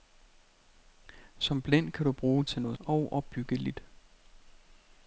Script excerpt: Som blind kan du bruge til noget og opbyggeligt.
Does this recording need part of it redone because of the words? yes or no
no